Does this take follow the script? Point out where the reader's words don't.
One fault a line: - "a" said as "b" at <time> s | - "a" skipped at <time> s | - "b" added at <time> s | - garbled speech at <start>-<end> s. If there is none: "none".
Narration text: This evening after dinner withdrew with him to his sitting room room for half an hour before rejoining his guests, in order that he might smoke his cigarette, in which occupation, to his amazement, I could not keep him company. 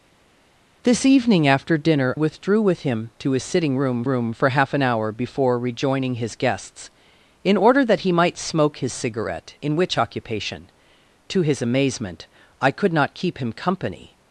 none